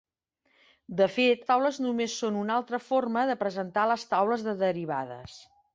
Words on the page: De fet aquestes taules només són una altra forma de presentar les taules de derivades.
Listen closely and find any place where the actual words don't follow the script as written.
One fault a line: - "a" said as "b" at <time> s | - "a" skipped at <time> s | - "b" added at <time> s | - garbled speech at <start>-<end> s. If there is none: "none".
- "aquestes" skipped at 1.4 s